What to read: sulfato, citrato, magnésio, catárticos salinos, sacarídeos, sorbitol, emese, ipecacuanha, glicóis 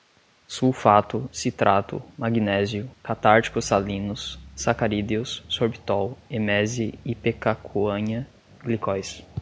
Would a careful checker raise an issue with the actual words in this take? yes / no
no